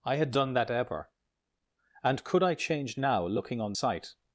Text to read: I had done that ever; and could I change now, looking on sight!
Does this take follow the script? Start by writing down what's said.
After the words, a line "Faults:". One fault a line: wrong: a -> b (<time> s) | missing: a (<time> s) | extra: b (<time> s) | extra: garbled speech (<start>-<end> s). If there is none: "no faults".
I had done that ever; and could I change now, looking on sight!
Faults:
no faults